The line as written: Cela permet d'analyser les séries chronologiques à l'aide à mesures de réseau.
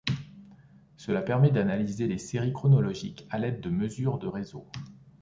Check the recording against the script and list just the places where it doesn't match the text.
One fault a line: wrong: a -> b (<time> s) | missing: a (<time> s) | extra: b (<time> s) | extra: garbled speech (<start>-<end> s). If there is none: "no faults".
wrong: à -> de (3.6 s)